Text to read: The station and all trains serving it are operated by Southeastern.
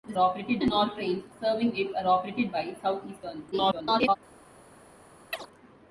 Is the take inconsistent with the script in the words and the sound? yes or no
yes